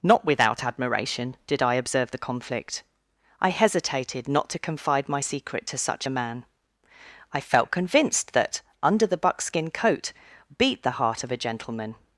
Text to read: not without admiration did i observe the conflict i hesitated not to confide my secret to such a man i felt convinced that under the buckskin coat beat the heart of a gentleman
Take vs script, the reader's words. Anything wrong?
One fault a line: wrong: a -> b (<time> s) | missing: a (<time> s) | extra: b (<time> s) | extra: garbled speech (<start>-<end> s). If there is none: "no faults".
no faults